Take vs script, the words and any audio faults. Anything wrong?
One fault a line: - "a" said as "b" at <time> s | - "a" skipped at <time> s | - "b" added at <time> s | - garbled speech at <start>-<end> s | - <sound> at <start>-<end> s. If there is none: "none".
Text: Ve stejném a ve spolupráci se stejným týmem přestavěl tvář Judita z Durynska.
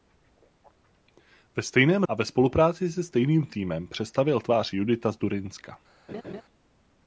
- laugh at 6.1-6.4 s